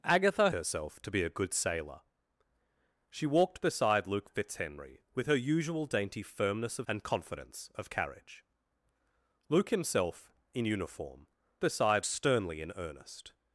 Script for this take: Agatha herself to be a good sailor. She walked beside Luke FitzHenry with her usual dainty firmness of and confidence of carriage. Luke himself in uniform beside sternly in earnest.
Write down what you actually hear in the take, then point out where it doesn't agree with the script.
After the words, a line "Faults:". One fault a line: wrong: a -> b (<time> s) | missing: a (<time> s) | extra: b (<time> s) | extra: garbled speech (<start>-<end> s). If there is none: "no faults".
Agatha herself to be a good sailor. She walked beside Luke FitzHenry with her usual dainty firmness of and confidence of carriage. Luke himself in uniform beside sternly in earnest.
Faults:
no faults